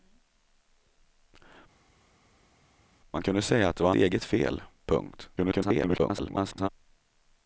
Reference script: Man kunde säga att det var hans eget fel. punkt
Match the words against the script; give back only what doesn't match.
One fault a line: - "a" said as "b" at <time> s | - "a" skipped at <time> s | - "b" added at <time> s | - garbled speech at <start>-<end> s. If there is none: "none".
- "hans" skipped at 3.9 s
- garbled speech at 5.4-6.7 s